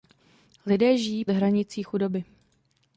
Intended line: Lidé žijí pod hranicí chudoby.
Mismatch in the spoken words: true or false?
true